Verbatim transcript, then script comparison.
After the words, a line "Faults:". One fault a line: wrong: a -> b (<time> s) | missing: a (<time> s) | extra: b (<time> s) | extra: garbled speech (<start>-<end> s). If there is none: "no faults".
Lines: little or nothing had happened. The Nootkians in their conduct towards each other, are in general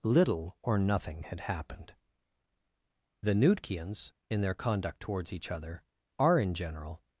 little or nothing had happened. The Nootkians in their conduct towards each other, are in general
Faults:
no faults